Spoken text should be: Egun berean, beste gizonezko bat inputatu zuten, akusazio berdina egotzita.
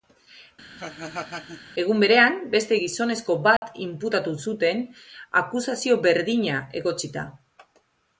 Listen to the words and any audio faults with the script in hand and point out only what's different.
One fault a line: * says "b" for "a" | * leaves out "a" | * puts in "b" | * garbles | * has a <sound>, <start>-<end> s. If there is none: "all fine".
* has a laugh, 0.8-1.6 s
* has a dropout, 3.6-3.6 s